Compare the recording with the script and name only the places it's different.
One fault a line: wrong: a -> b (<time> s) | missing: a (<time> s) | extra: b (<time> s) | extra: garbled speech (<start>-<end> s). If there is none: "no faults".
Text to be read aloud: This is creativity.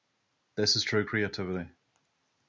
extra: true (0.8 s)